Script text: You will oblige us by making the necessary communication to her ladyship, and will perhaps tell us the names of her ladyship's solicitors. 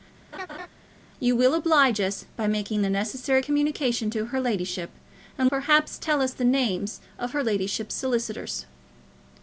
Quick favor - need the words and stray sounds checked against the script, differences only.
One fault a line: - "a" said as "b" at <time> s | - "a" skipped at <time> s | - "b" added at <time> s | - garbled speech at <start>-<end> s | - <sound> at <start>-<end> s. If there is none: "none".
- laugh at 0.3-0.7 s
- "will" skipped at 5.5 s